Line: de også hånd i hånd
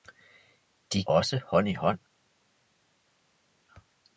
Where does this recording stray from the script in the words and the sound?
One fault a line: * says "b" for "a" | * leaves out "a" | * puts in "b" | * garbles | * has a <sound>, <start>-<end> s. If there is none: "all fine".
all fine